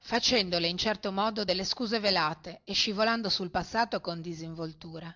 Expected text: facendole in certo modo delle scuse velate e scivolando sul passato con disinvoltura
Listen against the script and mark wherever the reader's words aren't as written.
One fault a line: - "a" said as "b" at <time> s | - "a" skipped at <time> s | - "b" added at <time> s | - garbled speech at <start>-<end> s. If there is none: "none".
none